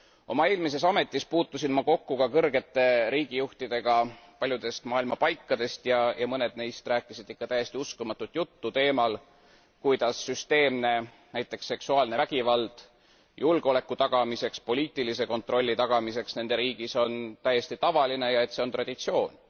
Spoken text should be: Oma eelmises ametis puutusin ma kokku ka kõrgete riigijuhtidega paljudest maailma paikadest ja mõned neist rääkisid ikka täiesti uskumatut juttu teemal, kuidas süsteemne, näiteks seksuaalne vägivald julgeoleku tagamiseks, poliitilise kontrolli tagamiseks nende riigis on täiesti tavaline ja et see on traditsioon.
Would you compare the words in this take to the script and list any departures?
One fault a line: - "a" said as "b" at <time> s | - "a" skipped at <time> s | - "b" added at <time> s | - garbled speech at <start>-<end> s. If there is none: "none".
none